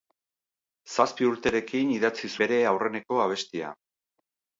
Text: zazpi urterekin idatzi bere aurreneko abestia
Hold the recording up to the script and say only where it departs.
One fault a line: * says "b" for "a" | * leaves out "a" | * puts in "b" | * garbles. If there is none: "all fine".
all fine